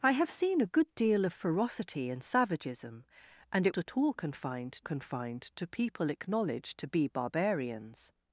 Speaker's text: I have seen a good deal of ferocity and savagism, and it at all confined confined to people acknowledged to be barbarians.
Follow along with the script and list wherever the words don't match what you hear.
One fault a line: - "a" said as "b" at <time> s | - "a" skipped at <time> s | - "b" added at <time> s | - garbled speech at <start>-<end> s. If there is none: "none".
none